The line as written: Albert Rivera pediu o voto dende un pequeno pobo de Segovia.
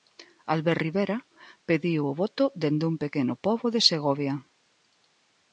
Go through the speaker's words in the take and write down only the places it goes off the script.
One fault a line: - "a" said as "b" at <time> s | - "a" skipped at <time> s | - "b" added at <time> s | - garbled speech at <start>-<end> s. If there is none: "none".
none